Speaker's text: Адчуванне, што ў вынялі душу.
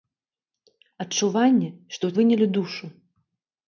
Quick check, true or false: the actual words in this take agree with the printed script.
true